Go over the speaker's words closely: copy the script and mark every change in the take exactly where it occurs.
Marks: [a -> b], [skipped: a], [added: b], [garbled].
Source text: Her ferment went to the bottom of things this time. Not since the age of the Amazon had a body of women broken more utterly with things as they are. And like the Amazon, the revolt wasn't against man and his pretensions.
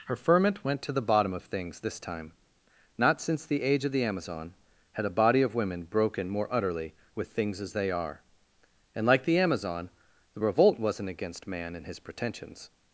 Her ferment went to the bottom of things this time. Not since the age of the Amazon had a body of women broken more utterly with things as they are. And like the Amazon, the revolt wasn't against man and his pretensions.